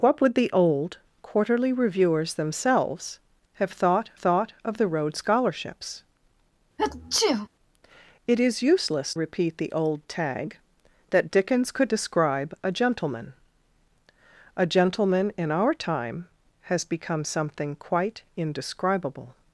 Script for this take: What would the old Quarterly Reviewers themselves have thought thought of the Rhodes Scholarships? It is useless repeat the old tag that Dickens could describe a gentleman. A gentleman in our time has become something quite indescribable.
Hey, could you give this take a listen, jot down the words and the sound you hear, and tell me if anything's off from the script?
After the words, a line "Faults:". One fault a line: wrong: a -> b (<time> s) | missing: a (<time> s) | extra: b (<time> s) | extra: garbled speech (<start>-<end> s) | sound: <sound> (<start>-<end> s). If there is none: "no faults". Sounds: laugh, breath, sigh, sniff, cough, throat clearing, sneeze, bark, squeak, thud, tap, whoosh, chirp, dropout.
What would the old Quarterly Reviewers themselves have thought thought of the Rhodes Scholarships? It is useless repeat the old tag that Dickens could describe a gentleman. A gentleman in our time has become something quite indescribable.
Faults:
sound: sneeze (6.8-7.5 s)